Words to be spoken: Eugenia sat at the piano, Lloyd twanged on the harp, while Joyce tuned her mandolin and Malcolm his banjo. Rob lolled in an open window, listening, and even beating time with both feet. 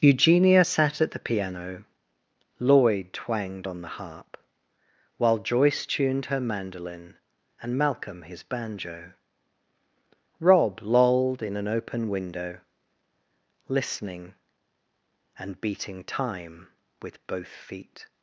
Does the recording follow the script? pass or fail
fail